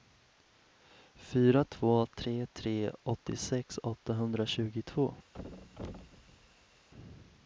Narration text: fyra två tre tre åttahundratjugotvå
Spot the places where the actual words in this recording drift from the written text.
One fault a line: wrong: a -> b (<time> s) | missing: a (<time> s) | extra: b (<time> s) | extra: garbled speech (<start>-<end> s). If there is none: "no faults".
extra: åttiosex (3.0 s)